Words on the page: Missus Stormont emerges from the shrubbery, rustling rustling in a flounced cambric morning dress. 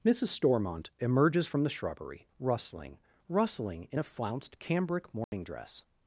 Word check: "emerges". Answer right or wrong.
right